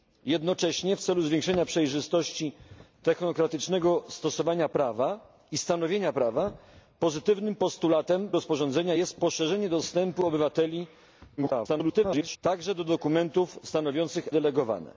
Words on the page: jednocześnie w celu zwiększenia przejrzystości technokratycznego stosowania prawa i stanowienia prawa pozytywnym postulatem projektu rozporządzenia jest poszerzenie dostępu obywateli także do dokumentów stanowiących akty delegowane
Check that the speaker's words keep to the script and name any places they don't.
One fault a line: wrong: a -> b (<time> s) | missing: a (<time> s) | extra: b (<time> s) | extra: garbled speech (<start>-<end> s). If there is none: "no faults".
missing: projektu (8.3 s)
extra: garbled speech (11.4-12.4 s)
missing: akty (14.3 s)